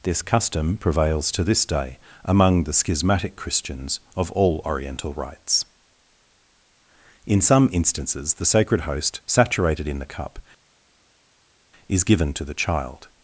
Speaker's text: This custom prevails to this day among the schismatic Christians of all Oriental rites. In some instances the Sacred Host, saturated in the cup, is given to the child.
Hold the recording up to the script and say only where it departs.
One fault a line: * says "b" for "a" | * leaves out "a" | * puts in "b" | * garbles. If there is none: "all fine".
all fine